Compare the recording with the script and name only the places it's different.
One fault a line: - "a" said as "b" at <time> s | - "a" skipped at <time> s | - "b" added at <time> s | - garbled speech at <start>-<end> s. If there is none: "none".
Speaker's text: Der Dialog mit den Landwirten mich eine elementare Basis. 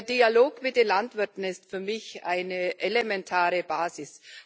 - "ist für" added at 1.4 s